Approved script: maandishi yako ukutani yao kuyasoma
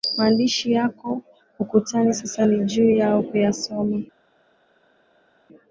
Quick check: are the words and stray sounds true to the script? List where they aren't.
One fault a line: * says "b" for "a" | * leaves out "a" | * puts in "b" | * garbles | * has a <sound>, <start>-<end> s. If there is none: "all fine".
* puts in "sasa ni juu"